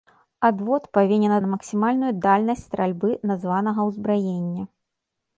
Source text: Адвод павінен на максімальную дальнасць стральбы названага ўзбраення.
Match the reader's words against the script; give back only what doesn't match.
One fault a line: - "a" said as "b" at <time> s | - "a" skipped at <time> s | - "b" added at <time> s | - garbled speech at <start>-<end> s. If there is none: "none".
none